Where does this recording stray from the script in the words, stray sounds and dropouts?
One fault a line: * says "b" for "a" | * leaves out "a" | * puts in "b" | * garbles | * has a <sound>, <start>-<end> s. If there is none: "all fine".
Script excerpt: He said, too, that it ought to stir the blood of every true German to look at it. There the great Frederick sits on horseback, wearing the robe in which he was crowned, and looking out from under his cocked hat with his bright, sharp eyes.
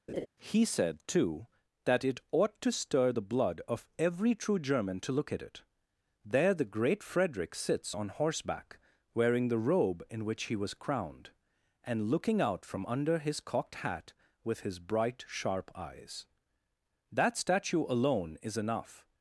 * has a laugh, 0.1-0.3 s
* puts in "That statue alone is enough"